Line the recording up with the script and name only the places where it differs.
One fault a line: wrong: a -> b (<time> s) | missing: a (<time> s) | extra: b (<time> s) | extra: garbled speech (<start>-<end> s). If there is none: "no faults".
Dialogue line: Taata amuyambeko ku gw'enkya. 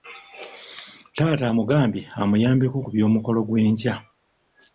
extra: amugambye (1.5 s)
extra: by'omukolo (2.9 s)